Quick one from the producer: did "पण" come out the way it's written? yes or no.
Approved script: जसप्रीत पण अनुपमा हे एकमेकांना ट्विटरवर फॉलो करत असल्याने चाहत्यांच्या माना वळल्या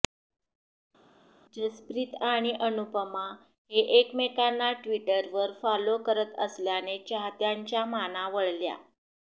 no